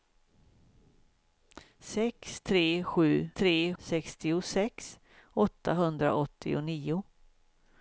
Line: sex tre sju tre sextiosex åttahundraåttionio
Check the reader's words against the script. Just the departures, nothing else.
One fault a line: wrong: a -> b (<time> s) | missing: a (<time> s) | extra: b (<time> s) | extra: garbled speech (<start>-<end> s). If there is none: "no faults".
no faults